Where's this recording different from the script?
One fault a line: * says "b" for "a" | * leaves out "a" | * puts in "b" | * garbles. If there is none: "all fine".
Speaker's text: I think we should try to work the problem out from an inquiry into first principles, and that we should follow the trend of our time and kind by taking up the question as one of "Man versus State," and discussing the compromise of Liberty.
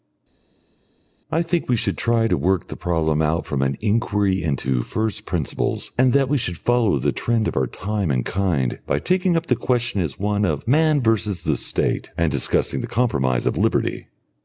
* puts in "the"